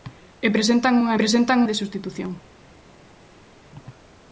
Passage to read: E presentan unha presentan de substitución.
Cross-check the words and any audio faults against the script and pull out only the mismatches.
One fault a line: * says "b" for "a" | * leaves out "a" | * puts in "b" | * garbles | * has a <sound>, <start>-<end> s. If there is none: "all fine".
all fine